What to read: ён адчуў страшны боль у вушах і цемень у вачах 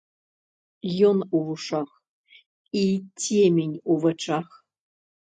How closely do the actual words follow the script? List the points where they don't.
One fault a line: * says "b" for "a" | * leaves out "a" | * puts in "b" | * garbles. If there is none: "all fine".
* leaves out "адчуў страшны боль"